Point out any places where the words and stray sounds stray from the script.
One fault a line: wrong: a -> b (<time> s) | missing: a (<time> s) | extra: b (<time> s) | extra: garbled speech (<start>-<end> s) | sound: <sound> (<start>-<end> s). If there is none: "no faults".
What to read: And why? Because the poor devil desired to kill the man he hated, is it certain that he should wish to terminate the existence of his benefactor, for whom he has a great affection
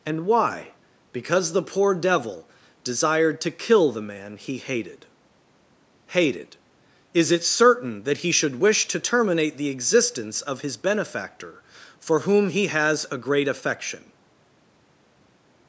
extra: hated (6.1 s)